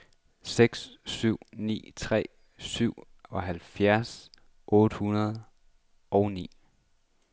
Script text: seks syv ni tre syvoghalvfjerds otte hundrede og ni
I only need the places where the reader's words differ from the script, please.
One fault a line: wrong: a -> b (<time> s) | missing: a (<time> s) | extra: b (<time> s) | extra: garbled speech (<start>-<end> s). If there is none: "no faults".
no faults